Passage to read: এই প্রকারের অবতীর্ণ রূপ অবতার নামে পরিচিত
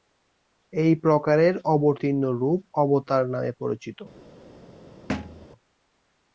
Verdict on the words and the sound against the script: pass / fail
fail